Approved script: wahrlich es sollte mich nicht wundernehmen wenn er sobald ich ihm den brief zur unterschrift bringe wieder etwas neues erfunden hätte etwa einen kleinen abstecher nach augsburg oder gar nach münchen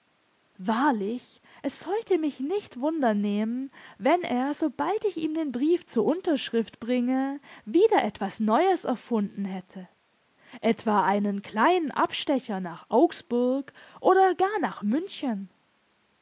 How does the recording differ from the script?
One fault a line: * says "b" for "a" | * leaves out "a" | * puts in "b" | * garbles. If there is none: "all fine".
all fine